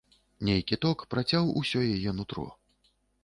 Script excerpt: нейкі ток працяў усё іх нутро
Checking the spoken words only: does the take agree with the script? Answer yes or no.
no